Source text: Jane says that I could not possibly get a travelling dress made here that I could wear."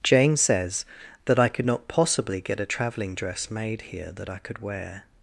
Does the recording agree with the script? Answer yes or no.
yes